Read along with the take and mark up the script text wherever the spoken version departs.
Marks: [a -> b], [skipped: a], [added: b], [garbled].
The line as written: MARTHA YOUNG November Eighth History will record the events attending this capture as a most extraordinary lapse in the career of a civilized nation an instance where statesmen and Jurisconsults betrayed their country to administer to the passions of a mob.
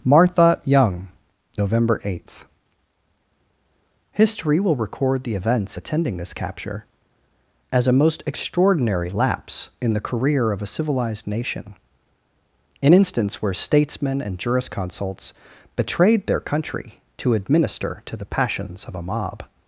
MARTHA YOUNG November Eighth History will record the events attending this capture as a most extraordinary lapse in the career of a civilized nation an instance where statesmen and Jurisconsults betrayed their country to administer to the passions of a mob.